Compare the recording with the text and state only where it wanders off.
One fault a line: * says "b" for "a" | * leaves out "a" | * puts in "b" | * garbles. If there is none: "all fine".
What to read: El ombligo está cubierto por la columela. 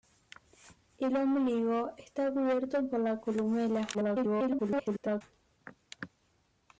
* garbles